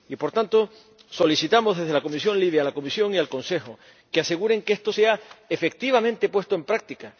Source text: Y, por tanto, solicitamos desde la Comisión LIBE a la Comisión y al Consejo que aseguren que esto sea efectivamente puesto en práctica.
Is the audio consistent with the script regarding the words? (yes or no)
yes